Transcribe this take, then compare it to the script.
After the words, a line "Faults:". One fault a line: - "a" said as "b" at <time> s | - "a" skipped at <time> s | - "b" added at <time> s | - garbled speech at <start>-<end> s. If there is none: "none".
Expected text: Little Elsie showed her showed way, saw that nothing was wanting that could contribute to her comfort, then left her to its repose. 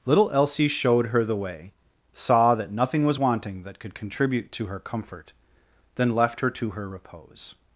Little Elsie showed her the way, saw that nothing was wanting that could contribute to her comfort, then left her to her repose.
Faults:
- "showed" said as "the" at 1.2 s
- "its" said as "her" at 6.7 s